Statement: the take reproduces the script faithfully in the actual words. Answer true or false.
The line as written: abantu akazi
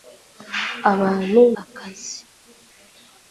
true